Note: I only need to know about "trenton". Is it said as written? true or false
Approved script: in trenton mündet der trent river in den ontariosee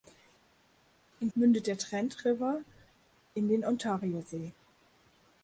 false